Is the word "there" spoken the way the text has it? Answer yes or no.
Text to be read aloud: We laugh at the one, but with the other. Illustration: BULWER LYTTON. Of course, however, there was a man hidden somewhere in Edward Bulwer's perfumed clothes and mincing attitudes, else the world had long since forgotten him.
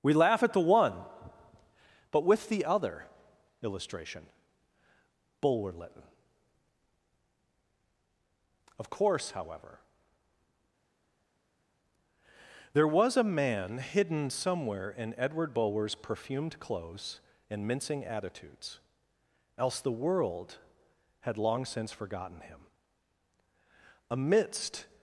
yes